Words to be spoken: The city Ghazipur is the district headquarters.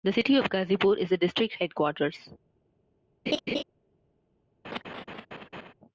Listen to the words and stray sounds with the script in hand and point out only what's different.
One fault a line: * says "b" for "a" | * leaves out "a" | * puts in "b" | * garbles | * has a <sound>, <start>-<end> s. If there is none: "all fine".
* puts in "of"
* has a laugh, 3.3-3.6 s
* has a laugh, 4.6-5.7 s